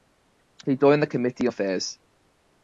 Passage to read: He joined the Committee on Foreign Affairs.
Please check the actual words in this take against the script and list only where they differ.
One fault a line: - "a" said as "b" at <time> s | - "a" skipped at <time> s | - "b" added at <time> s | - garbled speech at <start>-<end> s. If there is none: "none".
- "on Foreign" skipped at 1.5 s